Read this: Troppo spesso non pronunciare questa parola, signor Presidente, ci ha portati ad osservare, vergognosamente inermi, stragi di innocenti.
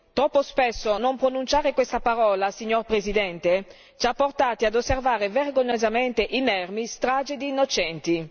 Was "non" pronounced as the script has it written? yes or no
yes